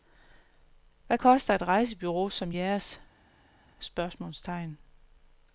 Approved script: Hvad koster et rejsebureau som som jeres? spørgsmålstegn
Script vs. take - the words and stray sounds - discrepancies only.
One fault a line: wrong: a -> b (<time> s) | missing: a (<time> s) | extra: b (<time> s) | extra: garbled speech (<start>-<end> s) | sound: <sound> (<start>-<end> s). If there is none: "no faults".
missing: som (2.5 s)